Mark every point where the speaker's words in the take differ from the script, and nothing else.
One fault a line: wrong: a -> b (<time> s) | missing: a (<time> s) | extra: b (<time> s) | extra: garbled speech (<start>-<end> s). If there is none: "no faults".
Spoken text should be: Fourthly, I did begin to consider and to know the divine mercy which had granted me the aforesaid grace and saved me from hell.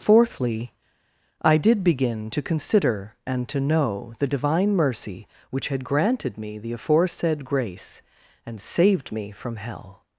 no faults